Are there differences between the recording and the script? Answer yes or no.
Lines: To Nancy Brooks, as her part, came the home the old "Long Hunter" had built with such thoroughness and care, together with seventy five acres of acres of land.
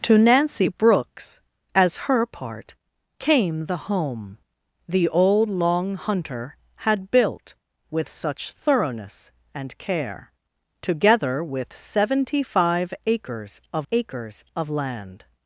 no